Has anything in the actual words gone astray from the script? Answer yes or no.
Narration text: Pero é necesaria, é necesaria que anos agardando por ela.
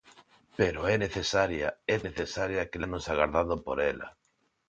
no